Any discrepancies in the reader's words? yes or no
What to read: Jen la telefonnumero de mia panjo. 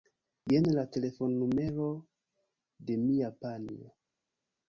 no